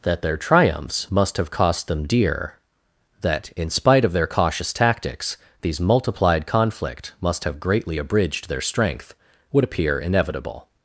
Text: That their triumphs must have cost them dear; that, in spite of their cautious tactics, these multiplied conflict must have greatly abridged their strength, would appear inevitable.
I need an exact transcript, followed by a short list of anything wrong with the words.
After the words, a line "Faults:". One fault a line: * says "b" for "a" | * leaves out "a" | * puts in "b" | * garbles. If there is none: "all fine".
That their triumphs must have cost them dear; that, in spite of their cautious tactics, these multiplied conflict must have greatly abridged their strength, would appear inevitable.
Faults:
all fine